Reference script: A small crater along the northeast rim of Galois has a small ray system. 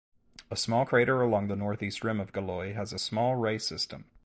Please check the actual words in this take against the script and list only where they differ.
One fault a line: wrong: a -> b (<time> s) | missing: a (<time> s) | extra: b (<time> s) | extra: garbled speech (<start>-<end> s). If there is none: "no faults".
no faults